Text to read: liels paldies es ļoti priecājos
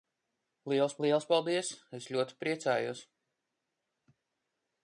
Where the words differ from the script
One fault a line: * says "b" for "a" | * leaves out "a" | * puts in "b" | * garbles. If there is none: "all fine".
* puts in "liels"